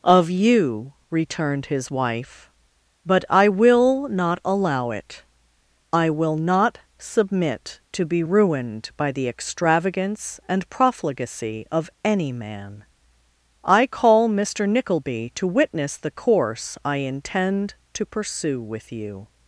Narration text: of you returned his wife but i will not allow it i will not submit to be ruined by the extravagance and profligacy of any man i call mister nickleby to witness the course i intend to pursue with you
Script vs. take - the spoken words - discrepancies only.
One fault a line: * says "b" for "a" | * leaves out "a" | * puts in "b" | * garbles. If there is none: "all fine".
all fine